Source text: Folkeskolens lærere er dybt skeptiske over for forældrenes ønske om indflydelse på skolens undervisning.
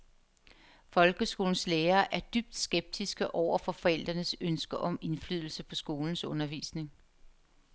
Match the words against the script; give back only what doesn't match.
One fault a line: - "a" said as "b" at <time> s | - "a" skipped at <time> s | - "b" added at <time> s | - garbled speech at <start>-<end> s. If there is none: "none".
none